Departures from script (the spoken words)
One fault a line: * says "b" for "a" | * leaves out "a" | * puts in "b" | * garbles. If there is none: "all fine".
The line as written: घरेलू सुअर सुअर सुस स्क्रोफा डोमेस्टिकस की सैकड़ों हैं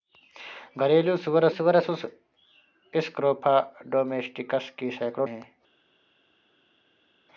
all fine